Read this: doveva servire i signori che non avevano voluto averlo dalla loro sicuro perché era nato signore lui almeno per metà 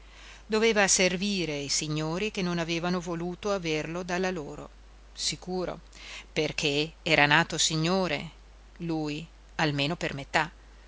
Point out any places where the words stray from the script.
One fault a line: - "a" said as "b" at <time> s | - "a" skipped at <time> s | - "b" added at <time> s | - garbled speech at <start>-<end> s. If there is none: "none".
none